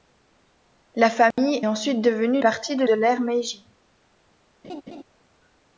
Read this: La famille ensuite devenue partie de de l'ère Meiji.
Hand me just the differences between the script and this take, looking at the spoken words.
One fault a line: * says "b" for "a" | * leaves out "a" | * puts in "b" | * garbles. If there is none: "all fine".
all fine